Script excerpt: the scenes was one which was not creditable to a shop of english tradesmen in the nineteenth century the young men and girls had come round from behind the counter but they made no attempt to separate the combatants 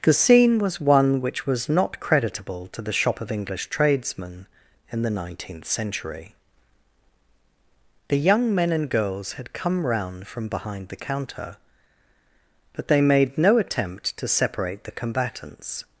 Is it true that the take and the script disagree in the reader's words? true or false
true